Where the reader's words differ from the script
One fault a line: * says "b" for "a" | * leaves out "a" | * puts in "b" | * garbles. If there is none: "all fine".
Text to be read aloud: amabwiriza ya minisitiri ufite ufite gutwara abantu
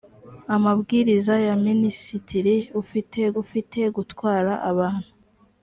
all fine